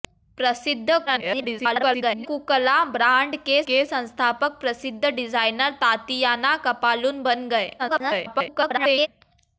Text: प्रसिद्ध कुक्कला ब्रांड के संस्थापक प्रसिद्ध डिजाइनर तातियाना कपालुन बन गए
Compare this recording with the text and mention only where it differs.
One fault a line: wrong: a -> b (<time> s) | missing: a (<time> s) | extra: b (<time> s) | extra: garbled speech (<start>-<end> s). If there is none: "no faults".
extra: garbled speech (1.1-2.3 s)
extra: के (3.7 s)
extra: garbled speech (7.8-9.1 s)